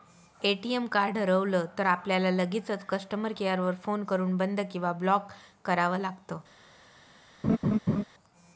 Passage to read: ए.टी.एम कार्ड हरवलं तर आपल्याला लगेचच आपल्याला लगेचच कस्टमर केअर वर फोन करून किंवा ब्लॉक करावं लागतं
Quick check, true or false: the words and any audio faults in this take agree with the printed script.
false